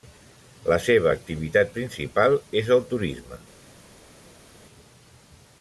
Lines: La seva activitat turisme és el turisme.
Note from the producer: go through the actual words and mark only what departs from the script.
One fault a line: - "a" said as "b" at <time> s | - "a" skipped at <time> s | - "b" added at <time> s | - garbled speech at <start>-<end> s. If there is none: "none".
- "turisme" said as "principal" at 1.8 s